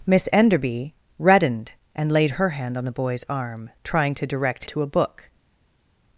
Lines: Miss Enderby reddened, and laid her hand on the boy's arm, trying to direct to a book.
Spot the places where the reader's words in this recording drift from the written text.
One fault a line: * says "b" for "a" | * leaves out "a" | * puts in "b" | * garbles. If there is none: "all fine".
all fine